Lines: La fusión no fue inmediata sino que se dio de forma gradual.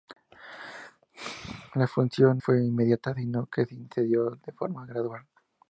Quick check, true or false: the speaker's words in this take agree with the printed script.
false